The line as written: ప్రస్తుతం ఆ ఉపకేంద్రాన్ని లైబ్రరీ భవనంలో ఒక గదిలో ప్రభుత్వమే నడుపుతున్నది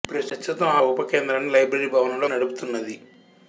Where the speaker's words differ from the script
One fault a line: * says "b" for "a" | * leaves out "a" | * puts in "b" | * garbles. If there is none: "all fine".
* leaves out "ఆ"
* leaves out "ఒక గదిలో ప్రభుత్వమే"